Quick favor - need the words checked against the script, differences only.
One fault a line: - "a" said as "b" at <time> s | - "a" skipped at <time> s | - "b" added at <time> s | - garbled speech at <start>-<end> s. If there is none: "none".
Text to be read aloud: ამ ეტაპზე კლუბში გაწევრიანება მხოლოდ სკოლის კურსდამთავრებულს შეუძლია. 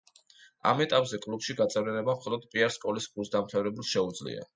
- "პიარ" added at 2.5 s